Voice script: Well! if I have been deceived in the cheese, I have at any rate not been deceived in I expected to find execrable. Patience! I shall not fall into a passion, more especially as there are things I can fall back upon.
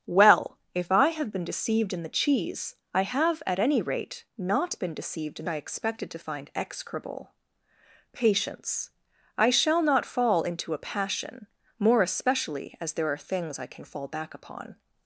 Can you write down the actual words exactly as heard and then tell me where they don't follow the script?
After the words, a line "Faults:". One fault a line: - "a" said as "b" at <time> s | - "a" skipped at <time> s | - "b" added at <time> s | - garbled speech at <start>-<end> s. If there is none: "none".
Well! if I have been deceived in the cheese, I have at any rate not been deceived in I expected to find execrable. Patience! I shall not fall into a passion, more especially as there are things I can fall back upon.
Faults:
none